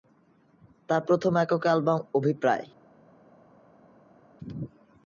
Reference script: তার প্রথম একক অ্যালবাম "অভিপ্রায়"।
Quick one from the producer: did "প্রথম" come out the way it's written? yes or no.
yes